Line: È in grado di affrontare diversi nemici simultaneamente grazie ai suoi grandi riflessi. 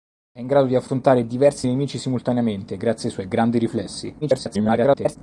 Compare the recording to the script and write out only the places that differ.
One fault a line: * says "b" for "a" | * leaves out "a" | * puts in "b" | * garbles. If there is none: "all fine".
* garbles